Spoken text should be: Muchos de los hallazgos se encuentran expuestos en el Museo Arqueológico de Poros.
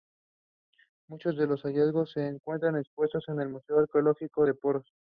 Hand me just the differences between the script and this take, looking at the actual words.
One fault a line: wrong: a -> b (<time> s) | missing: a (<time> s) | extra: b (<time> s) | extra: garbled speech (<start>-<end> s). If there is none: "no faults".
no faults